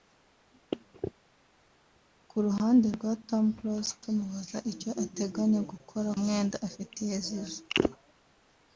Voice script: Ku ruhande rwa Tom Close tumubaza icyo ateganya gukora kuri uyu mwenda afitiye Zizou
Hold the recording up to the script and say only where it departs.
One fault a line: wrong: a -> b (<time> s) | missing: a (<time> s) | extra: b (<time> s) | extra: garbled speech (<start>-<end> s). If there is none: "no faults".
missing: kuri uyu (6.1 s)